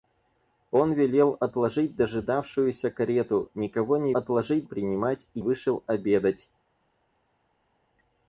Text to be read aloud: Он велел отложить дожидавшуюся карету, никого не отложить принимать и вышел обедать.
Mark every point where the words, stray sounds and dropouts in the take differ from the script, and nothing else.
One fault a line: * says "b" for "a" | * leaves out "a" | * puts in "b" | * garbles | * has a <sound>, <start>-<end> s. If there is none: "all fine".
all fine